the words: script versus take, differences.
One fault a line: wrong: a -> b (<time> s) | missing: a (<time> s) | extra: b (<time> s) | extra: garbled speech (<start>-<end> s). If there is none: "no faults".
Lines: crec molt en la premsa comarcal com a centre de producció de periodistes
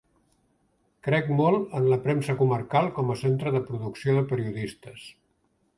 no faults